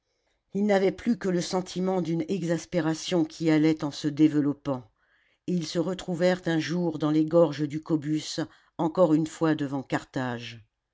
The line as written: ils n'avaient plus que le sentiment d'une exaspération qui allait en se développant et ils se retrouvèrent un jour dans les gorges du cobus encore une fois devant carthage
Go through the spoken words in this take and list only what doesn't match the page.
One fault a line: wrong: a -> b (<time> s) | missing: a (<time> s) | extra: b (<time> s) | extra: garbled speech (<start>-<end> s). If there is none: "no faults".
no faults